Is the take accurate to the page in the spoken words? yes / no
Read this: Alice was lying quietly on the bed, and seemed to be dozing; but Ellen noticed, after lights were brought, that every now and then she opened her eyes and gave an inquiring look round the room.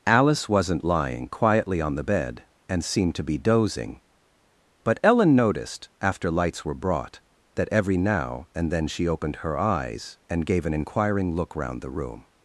no